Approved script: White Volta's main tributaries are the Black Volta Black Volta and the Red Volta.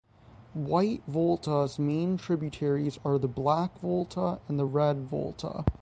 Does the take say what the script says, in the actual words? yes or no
no